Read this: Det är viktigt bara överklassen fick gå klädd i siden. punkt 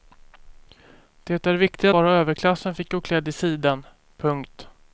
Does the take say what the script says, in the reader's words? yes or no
yes